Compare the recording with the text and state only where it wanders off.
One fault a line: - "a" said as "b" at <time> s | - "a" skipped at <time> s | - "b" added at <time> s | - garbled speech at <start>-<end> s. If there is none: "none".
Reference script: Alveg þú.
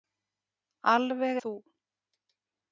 none